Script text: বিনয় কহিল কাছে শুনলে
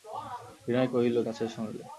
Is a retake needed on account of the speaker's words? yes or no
no